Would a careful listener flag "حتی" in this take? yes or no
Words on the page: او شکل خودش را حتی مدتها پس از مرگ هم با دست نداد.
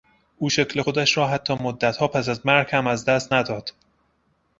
no